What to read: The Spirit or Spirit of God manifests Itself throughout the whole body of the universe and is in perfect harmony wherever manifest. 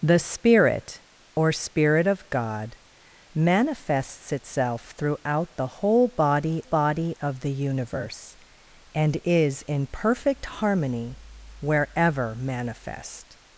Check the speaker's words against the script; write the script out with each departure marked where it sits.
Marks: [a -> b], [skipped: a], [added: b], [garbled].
The Spirit or Spirit of God manifests Itself throughout the whole body [added: body] of the universe and is in perfect harmony wherever manifest.